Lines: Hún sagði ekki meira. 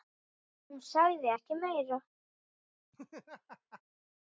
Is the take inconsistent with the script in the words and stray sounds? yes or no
yes